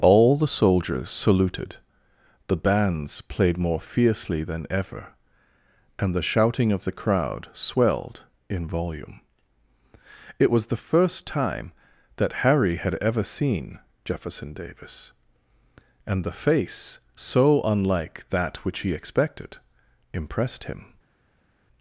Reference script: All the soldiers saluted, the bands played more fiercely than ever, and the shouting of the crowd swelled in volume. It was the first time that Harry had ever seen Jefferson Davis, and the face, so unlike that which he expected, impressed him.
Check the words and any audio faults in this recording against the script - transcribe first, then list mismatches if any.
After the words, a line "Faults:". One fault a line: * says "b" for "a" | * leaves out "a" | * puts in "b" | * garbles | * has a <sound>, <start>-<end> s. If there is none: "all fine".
All the soldiers saluted, the bands played more fiercely than ever, and the shouting of the crowd swelled in volume. It was the first time that Harry had ever seen Jefferson Davis, and the face, so unlike that which he expected, impressed him.
Faults:
all fine